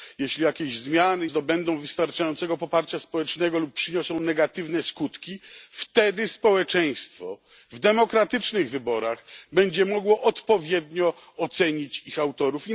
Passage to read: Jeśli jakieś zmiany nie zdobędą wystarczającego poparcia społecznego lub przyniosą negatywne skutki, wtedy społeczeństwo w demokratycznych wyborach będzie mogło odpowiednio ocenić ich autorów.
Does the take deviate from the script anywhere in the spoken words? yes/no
yes